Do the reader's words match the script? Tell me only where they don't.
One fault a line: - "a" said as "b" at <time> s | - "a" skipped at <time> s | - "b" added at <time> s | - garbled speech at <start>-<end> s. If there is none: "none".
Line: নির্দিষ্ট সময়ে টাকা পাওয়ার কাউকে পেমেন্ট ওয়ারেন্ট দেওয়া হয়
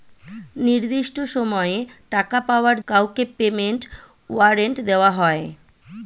none